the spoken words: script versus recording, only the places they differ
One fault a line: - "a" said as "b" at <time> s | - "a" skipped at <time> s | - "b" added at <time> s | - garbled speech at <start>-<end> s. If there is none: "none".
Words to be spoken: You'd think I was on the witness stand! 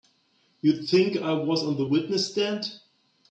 none